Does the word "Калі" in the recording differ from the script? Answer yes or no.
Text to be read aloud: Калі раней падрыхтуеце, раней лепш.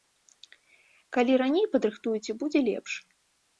no